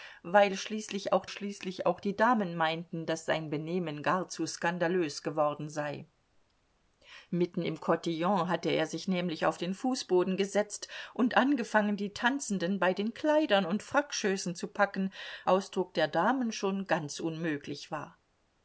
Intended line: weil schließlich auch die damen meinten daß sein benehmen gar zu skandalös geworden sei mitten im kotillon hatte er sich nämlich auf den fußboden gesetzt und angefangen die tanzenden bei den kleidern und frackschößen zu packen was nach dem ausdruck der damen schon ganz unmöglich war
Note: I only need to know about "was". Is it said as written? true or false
false